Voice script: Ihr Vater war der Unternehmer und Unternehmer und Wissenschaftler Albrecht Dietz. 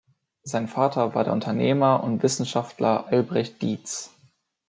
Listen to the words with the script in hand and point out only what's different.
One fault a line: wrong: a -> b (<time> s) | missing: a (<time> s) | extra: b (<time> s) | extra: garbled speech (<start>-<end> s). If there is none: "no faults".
wrong: Ihr -> Sein (0.4 s)
missing: Unternehmer und (2.2 s)